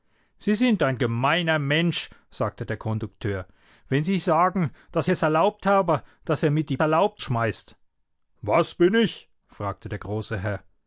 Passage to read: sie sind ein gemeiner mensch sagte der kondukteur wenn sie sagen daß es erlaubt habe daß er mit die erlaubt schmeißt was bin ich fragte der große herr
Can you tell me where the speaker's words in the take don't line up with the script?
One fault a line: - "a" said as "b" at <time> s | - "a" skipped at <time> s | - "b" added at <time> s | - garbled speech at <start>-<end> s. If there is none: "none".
none